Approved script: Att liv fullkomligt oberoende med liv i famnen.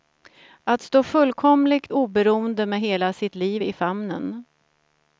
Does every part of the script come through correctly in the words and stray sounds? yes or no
no